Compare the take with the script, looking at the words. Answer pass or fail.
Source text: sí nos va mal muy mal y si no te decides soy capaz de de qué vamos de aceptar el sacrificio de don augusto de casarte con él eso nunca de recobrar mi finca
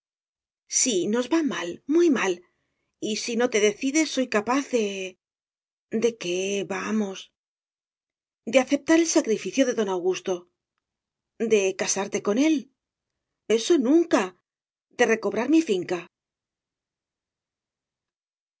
pass